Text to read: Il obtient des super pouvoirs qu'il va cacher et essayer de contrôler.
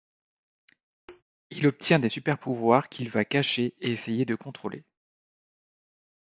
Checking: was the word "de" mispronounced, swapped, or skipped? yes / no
no